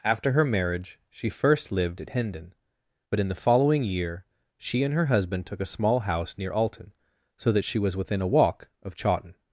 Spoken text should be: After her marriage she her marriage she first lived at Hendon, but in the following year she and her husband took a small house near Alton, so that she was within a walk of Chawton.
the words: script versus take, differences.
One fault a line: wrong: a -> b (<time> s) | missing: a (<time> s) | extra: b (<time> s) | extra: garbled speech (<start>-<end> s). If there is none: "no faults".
missing: her marriage she (1.3 s)